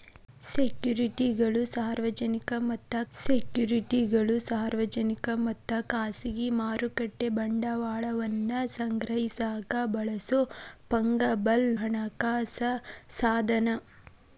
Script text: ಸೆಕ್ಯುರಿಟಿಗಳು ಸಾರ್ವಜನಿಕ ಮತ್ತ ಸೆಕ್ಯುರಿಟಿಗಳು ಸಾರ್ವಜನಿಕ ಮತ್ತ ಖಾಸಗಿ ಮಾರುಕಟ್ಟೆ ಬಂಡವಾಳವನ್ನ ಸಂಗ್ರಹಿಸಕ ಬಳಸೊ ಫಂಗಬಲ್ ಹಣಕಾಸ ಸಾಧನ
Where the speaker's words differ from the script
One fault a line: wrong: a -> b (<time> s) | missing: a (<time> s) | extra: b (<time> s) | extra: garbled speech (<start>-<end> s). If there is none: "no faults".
no faults